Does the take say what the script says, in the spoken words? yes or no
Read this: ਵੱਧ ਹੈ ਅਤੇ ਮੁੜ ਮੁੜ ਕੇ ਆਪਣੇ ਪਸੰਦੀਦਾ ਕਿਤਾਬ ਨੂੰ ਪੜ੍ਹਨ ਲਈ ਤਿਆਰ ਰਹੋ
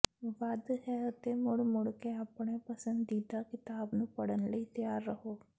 yes